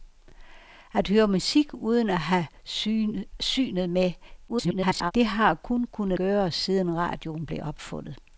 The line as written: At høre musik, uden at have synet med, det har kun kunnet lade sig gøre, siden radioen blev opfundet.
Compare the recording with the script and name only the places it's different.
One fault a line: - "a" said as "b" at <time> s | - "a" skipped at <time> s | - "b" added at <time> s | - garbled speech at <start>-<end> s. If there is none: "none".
- garbled speech at 4.5-5.1 s
- "lade sig" skipped at 6.2 s